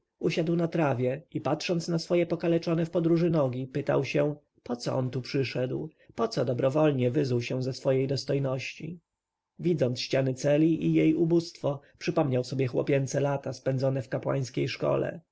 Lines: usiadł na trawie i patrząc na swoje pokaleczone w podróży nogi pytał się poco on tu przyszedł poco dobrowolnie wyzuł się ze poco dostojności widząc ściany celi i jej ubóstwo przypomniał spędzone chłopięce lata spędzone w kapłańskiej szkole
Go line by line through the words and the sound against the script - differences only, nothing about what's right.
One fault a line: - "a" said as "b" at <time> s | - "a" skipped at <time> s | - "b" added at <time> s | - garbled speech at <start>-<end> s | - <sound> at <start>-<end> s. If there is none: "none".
- "poco" said as "swej" at 7.7 s
- "spędzone" said as "sobie" at 12.4 s